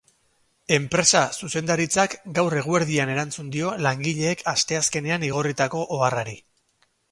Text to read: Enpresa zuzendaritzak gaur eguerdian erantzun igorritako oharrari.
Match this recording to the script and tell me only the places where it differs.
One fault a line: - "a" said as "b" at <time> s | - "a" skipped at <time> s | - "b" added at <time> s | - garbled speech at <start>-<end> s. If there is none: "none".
- "dio langileek asteazkenean" added at 3.6 s